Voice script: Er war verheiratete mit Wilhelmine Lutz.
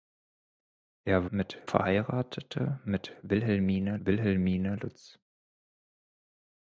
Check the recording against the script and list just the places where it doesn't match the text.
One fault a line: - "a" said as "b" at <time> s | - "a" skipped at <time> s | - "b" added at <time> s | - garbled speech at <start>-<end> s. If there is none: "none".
- "war" said as "mit" at 1.3 s
- "Wilhelmine" added at 4.0 s